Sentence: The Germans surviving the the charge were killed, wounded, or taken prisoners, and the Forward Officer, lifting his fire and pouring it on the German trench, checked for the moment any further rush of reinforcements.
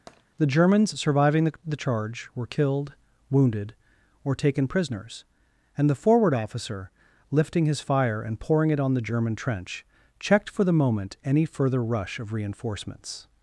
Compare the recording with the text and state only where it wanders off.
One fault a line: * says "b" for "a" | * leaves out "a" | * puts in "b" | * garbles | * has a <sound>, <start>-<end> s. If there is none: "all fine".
* has a tap, 0.1-0.2 s